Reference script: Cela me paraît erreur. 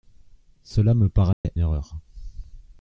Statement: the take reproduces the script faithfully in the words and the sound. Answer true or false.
false